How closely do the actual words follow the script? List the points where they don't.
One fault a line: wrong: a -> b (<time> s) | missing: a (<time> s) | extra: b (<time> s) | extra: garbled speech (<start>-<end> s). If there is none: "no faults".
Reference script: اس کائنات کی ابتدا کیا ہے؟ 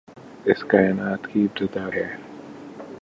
missing: کیا (1.9 s)